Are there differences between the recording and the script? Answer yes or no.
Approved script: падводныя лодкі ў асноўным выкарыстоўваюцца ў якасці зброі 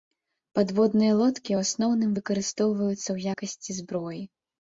no